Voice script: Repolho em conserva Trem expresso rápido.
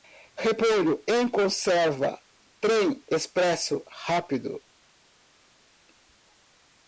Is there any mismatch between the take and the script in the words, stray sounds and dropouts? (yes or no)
no